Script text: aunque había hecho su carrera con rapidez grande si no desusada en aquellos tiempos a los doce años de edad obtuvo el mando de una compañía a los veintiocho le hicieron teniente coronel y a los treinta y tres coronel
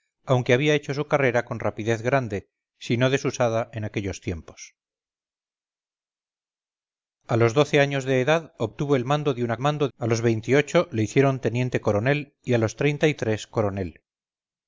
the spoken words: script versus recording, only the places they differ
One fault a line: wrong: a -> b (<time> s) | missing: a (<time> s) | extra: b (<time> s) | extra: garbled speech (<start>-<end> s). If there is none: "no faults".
wrong: compañía -> mando (9.6 s)